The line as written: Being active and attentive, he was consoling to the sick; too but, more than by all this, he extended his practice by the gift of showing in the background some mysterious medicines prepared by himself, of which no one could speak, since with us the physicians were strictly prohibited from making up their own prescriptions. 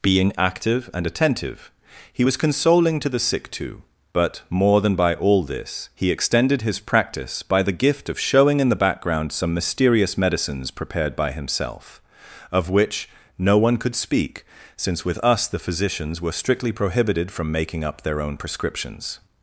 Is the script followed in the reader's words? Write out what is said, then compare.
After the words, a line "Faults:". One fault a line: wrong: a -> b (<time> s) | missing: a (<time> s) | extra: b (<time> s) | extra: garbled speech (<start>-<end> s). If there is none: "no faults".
Being active and attentive, he was consoling to the sick; too but, more than by all this, he extended his practice by the gift of showing in the background some mysterious medicines prepared by himself, of which no one could speak, since with us the physicians were strictly prohibited from making up their own prescriptions.
Faults:
no faults